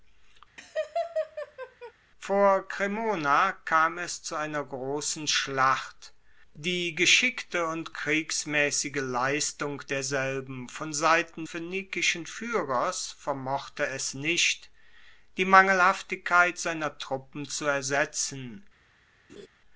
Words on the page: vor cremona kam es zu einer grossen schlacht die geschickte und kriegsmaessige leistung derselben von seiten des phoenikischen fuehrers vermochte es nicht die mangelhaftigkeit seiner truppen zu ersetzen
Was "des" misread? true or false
true